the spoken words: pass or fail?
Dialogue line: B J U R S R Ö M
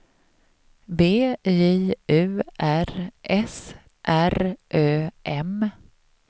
pass